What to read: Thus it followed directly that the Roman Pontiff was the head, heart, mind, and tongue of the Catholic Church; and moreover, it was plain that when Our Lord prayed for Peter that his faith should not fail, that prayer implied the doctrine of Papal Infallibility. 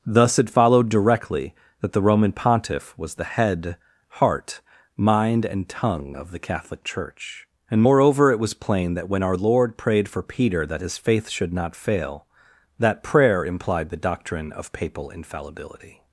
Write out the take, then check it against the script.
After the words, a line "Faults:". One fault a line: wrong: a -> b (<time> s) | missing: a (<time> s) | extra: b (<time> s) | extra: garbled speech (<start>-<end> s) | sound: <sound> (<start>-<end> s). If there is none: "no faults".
Thus it followed directly that the Roman Pontiff was the head, heart, mind, and tongue of the Catholic Church; and moreover, it was plain that when Our Lord prayed for Peter that his faith should not fail, that prayer implied the doctrine of Papal Infallibility.
Faults:
no faults